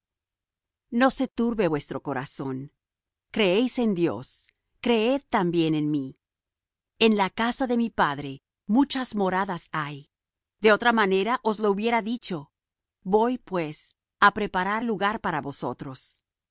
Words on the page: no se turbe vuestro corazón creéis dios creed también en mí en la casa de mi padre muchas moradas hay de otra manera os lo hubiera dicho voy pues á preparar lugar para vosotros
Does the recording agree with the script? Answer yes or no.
no